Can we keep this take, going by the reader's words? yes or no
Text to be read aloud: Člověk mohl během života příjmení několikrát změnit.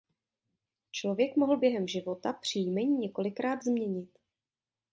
yes